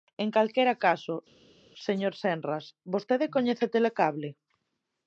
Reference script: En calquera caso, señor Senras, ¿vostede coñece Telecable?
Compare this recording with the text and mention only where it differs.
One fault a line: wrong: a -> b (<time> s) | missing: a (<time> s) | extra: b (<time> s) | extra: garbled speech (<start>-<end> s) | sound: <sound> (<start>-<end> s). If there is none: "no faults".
no faults